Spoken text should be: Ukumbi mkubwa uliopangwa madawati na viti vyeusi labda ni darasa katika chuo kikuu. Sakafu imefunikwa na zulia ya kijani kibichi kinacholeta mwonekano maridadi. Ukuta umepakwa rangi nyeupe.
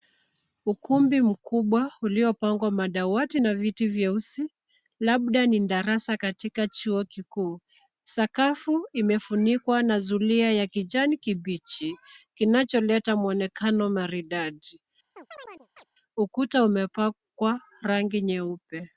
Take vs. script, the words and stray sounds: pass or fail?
fail